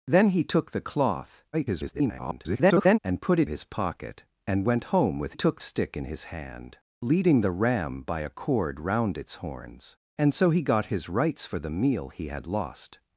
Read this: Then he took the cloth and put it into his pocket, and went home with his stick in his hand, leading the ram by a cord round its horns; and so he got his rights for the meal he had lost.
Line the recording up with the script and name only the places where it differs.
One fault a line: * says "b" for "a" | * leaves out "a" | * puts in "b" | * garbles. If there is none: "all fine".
* garbles
* leaves out "into"
* says "took" for "his"